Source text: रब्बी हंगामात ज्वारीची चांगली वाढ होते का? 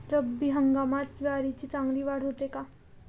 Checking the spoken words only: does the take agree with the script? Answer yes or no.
yes